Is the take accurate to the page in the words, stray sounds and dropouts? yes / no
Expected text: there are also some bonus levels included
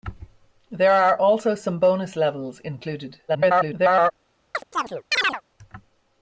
no